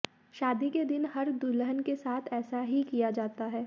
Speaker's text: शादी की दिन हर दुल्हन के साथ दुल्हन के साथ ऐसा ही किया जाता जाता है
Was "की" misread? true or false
true